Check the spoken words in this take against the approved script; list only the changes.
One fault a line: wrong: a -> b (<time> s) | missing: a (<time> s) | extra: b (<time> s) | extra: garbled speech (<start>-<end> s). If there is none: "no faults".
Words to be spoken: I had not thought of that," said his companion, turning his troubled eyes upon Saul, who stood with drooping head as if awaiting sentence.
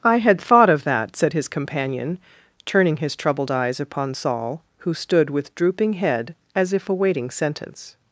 missing: not (0.4 s)